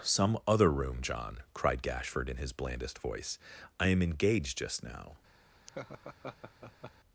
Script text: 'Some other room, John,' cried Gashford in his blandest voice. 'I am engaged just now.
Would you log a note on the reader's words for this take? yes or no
no